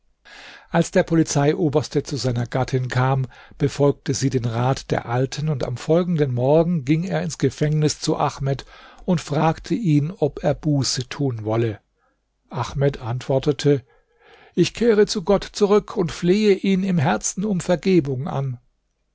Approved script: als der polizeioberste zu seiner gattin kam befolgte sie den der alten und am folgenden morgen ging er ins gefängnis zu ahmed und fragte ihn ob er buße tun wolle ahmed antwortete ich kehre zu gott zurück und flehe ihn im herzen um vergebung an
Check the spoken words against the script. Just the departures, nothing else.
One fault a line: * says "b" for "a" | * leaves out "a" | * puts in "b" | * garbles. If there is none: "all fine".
* puts in "rat"